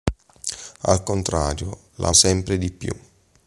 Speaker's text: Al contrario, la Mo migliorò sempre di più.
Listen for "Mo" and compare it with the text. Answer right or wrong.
wrong